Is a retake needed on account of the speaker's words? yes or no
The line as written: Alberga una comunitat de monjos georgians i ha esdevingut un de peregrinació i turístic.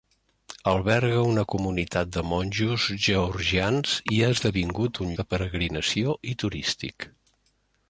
no